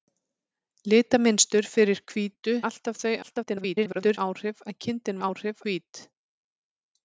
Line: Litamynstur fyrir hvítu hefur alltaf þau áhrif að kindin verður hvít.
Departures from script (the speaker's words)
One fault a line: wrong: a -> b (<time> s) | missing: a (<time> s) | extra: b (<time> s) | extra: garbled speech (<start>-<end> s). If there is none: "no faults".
missing: hefur (2.5 s)
extra: garbled speech (3.2-4.2 s)
wrong: verður -> áhrif (5.3 s)